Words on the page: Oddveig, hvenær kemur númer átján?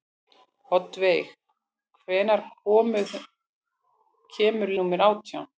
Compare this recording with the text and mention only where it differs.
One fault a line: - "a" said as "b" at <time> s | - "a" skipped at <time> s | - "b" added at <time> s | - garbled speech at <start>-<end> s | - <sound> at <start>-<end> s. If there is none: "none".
none